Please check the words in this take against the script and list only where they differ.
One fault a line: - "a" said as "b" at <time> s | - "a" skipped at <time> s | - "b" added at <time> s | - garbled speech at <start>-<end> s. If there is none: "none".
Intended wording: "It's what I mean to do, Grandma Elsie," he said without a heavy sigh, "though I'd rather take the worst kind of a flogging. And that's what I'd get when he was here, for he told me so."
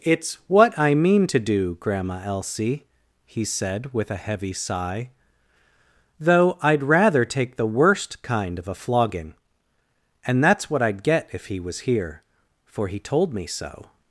- "without" said as "with" at 3.9 s
- "when" said as "if" at 11.3 s